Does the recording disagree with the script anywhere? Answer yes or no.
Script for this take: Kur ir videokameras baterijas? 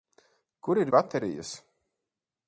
yes